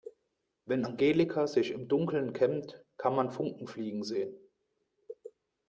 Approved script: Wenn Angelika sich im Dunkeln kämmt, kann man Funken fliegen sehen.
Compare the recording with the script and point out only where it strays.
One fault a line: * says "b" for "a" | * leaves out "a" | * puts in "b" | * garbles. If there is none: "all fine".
all fine